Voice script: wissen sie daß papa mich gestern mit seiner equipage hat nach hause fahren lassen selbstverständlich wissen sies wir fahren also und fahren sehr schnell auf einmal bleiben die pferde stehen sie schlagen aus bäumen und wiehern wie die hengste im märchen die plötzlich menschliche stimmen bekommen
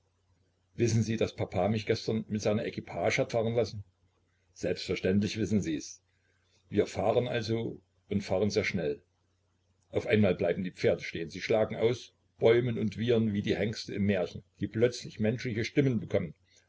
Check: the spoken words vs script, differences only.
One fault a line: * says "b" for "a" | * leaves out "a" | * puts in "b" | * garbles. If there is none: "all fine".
* leaves out "nach hause"